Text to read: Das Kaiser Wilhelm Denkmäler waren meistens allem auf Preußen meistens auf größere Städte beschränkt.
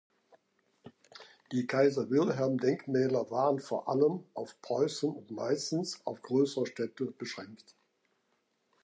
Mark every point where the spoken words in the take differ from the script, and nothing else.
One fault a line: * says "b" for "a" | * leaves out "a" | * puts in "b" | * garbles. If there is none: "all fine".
* says "Die" for "Das"
* says "vor" for "meistens"
* puts in "und"